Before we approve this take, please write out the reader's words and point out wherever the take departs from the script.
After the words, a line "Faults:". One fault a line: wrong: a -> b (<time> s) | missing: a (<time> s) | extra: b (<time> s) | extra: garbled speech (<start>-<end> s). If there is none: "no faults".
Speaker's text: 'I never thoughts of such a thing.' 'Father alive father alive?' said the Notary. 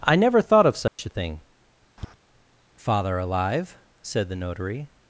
'I never thought of such a thing.' 'Father alive?' said the Notary.
Faults:
wrong: thoughts -> thought (0.4 s)
missing: father alive (3.8 s)